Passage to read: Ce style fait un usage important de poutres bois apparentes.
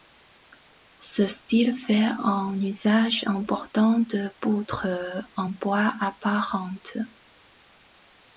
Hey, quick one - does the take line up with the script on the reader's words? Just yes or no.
no